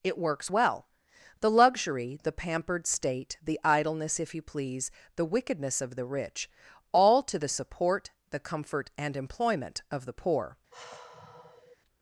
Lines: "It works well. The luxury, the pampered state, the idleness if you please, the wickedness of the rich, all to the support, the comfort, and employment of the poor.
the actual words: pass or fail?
pass